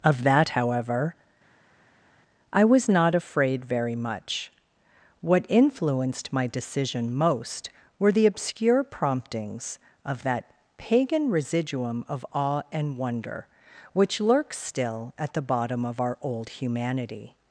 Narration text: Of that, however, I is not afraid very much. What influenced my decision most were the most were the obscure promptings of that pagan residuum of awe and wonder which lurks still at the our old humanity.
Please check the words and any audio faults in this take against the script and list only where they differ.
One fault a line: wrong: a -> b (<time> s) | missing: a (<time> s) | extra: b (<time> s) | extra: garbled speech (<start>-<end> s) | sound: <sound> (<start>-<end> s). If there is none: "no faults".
wrong: is -> was (2.6 s)
missing: most were the (8.3 s)
extra: bottom of (15.4 s)